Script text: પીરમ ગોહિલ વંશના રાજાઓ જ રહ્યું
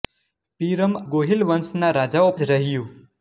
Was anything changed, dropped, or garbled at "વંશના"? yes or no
no